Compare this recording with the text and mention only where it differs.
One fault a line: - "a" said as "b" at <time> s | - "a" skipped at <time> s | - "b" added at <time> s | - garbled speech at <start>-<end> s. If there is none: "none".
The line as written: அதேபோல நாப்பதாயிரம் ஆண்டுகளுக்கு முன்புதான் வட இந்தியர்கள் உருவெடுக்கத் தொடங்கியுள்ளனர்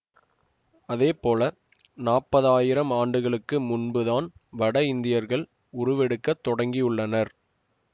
none